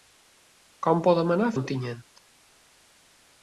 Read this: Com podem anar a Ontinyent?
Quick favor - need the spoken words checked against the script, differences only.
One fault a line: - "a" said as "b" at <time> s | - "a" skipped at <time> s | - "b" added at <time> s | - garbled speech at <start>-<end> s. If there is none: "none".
none